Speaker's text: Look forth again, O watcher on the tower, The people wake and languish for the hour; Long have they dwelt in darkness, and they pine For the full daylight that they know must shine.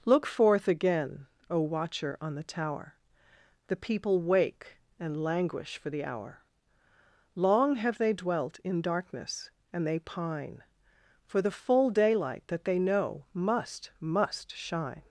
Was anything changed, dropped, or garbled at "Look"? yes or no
no